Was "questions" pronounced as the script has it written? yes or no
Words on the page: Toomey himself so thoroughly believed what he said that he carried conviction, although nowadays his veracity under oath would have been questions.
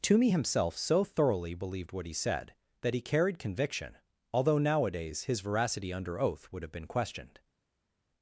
no